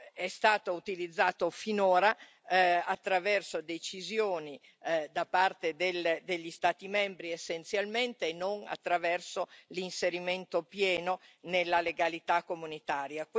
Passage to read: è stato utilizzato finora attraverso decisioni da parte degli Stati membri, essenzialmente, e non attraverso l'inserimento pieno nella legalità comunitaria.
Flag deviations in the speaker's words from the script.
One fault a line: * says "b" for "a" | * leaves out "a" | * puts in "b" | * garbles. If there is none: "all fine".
all fine